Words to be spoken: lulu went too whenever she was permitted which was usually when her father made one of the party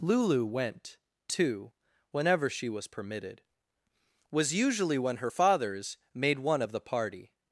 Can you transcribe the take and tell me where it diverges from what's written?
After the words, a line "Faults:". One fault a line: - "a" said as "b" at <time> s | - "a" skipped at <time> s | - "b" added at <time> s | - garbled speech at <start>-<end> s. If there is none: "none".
lulu went too whenever she was permitted was usually when her fathers made one of the party
Faults:
- "which" skipped at 3.4 s
- "father" said as "fathers" at 5.3 s